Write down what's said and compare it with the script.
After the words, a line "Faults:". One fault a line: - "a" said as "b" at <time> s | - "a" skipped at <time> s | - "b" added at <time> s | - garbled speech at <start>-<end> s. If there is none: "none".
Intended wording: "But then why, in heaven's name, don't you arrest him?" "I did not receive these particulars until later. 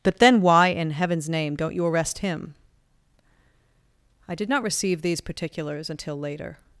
"But then why, in heaven's name, don't you arrest him?" "I did not receive these particulars until later.
Faults:
none